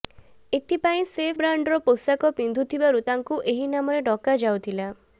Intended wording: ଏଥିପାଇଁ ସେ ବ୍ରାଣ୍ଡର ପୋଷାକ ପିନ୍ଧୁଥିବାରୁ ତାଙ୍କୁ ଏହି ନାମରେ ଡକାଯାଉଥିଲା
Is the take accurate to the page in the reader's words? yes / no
yes